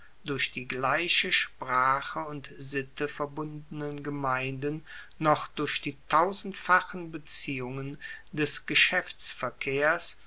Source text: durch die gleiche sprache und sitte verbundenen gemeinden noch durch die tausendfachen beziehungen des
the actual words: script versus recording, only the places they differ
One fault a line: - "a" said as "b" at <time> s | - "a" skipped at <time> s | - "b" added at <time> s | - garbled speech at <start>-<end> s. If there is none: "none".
none